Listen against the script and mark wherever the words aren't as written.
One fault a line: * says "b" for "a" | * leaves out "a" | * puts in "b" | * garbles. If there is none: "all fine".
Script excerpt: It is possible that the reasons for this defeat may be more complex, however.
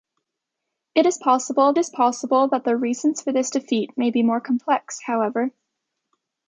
* puts in "is possible"